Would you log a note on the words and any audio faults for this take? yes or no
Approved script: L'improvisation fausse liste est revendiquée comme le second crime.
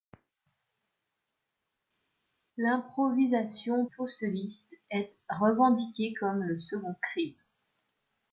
no